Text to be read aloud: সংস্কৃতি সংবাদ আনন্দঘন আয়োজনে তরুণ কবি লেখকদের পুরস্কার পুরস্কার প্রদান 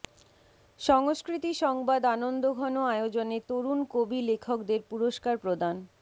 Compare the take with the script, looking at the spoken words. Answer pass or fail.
fail